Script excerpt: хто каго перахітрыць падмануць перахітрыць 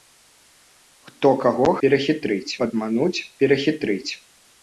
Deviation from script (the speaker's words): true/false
false